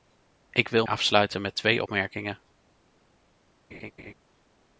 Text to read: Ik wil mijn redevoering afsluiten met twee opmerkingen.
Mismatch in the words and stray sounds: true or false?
true